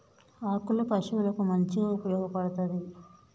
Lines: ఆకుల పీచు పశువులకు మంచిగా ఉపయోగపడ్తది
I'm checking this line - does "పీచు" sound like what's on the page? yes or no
no